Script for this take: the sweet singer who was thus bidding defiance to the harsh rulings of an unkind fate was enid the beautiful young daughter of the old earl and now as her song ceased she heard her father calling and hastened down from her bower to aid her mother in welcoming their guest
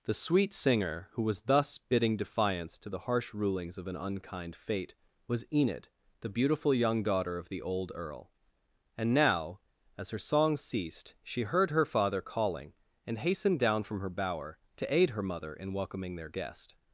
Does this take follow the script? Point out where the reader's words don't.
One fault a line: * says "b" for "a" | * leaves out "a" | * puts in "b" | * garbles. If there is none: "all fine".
all fine